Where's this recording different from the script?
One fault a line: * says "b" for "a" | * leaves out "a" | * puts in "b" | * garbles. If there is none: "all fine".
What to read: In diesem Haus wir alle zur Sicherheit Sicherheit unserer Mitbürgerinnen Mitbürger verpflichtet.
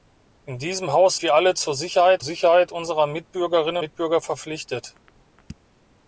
all fine